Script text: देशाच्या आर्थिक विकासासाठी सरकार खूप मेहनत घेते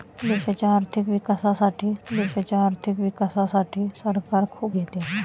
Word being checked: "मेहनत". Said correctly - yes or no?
no